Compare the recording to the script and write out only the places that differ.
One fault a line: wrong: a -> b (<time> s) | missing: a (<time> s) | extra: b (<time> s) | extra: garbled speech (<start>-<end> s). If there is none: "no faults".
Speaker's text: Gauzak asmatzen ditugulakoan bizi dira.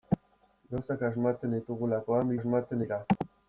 wrong: bizi -> asmatzen (2.4 s)